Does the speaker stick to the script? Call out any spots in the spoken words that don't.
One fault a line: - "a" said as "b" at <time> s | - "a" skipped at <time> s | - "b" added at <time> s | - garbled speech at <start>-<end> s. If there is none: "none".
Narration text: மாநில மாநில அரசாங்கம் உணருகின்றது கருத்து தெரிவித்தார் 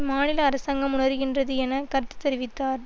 - "மாநில" skipped at 0.4 s
- "என" added at 1.6 s